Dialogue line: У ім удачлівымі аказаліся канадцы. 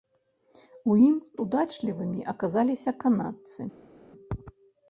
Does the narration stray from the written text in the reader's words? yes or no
no